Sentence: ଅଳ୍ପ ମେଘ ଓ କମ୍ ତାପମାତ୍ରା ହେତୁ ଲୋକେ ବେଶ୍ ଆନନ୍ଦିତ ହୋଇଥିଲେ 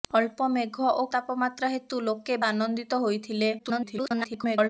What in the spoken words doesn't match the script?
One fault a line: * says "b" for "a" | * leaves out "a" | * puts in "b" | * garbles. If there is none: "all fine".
* leaves out "କମ୍"
* leaves out "ବେଶ୍"
* garbles